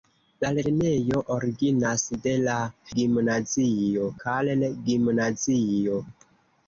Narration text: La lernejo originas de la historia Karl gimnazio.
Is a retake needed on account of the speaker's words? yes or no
yes